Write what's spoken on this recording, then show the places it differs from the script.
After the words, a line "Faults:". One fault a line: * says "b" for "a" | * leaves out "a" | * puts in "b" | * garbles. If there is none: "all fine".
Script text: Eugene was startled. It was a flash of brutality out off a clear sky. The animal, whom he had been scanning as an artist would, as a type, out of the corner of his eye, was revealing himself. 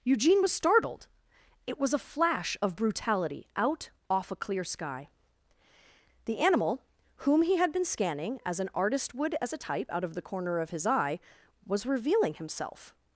Eugene was startled. It was a flash of brutality out off a clear sky. The animal, whom he had been scanning as an artist would, as a type, out of the corner of his eye, was revealing himself.
Faults:
all fine